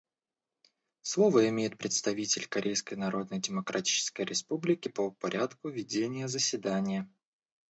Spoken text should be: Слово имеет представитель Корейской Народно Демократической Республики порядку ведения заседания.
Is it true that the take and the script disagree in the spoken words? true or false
true